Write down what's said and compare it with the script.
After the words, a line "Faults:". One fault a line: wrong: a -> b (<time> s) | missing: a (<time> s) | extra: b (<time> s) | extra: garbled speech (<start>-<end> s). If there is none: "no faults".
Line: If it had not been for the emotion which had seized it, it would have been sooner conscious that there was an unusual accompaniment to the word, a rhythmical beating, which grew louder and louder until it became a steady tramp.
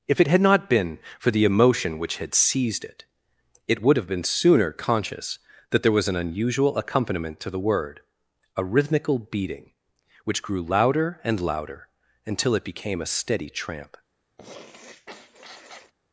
If it had not been for the emotion which had seized it, it would have been sooner conscious that there was an unusual accompaniment to the word, a rhythmical beating, which grew louder and louder until it became a steady tramp.
Faults:
no faults